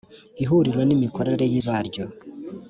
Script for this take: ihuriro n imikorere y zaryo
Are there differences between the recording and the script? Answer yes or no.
no